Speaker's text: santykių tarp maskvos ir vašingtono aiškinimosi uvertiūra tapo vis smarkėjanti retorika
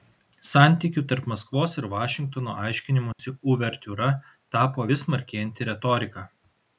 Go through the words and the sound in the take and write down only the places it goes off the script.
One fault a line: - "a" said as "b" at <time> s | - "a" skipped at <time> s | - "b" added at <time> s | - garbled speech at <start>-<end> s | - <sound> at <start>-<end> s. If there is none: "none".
- dropout at 3.1-3.2 s